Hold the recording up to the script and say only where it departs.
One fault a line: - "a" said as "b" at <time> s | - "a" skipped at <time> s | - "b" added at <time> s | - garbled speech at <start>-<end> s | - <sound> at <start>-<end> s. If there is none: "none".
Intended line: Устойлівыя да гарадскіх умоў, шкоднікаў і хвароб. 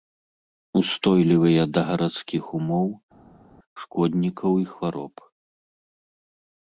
none